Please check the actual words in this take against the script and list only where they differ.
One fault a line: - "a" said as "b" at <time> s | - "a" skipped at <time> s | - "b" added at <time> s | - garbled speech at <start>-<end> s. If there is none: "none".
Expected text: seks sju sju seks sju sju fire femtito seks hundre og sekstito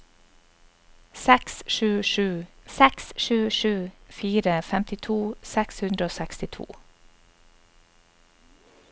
none